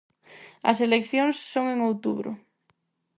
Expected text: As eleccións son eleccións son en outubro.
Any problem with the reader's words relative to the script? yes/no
yes